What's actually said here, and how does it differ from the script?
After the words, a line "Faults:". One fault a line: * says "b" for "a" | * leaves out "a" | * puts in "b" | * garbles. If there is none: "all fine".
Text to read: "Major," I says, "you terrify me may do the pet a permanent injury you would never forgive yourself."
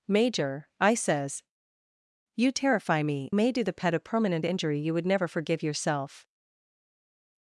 "Major," I says, "you terrify me may do the pet a permanent injury you would never forgive yourself."
Faults:
all fine